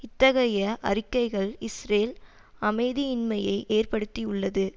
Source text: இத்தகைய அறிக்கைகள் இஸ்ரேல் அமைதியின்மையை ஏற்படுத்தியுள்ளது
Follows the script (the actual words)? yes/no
yes